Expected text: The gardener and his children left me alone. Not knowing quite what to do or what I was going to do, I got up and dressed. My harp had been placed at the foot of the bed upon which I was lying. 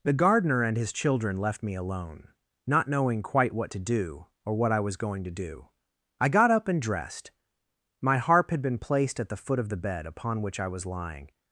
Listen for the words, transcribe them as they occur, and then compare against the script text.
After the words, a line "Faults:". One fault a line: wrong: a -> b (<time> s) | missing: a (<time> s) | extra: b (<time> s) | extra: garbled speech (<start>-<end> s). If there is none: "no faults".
The gardener and his children left me alone. Not knowing quite what to do or what I was going to do, I got up and dressed. My harp had been placed at the foot of the bed upon which I was lying.
Faults:
no faults